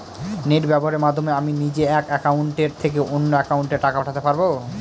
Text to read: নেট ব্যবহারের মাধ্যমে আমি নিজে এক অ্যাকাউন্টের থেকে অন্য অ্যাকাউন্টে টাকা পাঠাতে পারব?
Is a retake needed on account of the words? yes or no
no